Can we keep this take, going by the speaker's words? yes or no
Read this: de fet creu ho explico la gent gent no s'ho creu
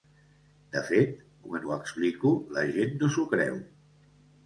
no